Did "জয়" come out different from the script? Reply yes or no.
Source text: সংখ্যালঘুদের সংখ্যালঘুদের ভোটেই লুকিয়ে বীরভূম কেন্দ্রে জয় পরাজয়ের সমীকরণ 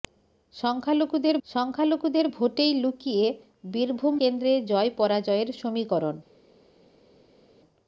no